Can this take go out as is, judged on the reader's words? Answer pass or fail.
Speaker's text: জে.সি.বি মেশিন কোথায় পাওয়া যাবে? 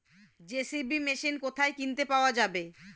fail